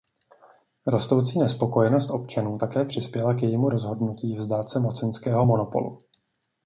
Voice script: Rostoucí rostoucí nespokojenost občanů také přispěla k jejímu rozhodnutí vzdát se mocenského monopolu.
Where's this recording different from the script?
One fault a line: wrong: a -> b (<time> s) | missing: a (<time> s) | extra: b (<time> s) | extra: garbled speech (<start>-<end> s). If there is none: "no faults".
missing: rostoucí (1.4 s)